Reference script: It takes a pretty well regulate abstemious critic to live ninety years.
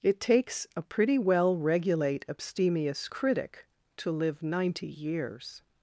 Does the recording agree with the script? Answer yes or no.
yes